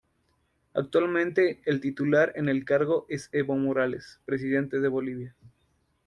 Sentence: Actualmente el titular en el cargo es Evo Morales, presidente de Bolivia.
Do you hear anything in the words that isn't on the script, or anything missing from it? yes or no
no